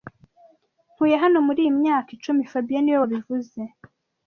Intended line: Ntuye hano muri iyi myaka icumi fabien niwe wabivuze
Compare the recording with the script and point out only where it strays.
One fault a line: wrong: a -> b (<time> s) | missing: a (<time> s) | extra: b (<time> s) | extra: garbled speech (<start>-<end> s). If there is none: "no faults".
no faults